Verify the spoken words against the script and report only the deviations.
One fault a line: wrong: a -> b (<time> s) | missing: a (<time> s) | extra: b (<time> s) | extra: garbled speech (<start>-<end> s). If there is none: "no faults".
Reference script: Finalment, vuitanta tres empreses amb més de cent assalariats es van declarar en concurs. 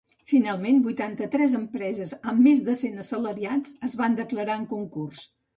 no faults